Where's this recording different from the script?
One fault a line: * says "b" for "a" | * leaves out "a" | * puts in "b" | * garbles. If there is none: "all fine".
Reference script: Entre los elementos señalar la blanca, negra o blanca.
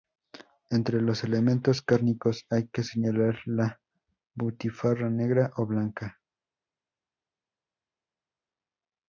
* puts in "cárnicos hay que"
* says "butifarra" for "blanca"